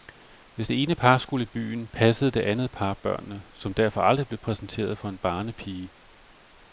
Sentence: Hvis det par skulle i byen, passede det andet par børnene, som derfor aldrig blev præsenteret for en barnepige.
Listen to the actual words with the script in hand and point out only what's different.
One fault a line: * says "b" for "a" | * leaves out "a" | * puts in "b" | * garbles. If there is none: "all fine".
* puts in "ene"